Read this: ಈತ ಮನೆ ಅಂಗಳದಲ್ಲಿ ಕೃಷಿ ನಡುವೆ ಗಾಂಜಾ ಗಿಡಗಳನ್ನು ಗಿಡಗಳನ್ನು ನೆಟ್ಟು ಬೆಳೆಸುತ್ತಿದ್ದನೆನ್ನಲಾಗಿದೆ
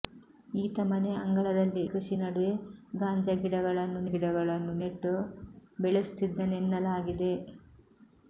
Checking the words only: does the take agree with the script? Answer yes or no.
yes